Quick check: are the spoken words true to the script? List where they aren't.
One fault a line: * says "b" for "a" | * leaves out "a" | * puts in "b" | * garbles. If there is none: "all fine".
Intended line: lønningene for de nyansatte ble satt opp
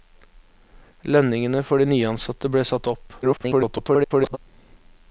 * garbles